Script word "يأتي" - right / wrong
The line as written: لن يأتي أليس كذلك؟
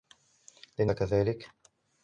wrong